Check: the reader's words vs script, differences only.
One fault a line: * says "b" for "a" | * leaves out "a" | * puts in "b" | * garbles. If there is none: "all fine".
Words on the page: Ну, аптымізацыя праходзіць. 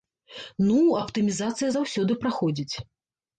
* puts in "заўсёды"